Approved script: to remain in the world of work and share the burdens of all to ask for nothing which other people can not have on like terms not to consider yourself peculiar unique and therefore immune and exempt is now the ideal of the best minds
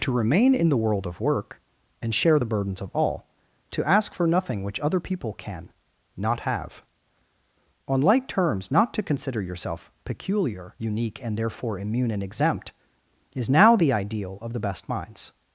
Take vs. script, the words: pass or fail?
pass